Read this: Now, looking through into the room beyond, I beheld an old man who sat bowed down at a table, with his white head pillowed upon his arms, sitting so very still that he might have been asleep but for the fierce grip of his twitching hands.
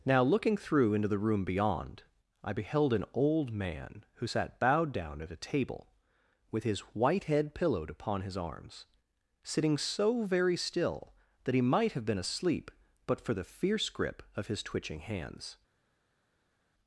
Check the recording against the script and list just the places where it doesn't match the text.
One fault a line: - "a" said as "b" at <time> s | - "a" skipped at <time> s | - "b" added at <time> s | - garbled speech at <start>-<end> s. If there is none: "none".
none